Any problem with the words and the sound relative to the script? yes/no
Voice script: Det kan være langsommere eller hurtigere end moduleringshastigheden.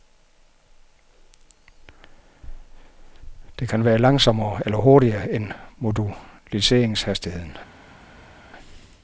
no